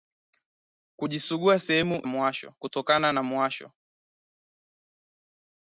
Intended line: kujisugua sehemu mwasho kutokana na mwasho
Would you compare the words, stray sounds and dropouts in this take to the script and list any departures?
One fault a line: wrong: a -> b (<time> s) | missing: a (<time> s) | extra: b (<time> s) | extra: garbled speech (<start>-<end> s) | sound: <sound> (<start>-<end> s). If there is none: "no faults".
no faults